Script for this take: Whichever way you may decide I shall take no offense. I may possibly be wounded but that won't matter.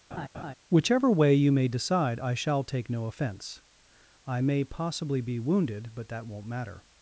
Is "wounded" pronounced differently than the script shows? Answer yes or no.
no